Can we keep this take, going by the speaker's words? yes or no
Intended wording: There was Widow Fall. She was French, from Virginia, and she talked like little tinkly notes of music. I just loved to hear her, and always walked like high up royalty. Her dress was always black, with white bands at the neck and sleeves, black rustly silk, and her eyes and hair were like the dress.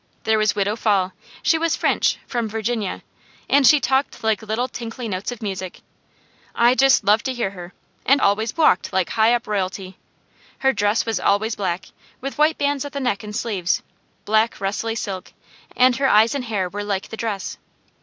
yes